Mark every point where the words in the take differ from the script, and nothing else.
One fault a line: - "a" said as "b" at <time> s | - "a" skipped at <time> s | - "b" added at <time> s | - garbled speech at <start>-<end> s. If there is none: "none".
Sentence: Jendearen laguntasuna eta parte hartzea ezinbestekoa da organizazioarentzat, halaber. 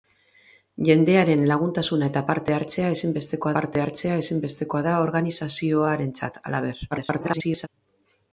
- "parte hartzea ezinbestekoa" added at 3.6 s
- garbled speech at 6.9-7.7 s